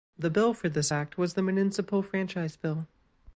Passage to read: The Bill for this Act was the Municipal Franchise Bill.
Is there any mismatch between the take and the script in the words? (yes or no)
no